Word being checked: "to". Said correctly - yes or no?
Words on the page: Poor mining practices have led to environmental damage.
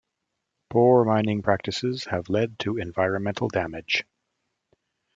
yes